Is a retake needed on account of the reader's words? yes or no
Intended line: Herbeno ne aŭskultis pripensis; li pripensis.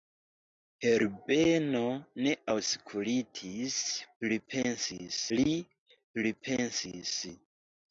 no